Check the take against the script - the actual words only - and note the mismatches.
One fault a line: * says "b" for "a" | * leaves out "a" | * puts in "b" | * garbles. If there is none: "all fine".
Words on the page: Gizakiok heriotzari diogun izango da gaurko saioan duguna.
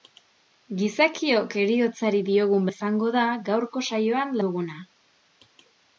all fine